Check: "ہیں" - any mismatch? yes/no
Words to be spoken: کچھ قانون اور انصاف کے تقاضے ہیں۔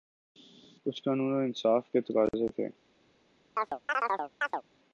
yes